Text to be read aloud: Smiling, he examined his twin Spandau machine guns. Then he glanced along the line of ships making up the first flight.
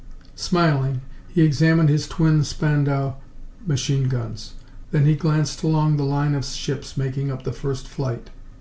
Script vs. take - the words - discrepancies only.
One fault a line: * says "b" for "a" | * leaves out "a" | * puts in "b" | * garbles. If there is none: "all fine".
all fine